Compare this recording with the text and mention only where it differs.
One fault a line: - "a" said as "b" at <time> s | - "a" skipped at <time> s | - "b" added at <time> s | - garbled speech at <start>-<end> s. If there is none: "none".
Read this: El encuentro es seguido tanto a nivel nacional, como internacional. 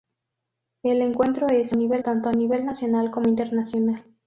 - "seguido" said as "nivel" at 1.7 s